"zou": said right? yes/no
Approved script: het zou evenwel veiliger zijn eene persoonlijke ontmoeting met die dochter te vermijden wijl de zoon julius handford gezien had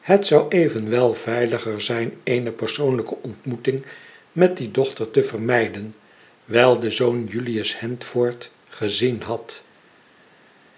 yes